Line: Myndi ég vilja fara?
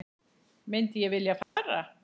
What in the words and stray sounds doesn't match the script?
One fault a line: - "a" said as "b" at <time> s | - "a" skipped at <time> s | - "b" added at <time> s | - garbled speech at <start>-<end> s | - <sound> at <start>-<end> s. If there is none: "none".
- dropout at 1.4-1.6 s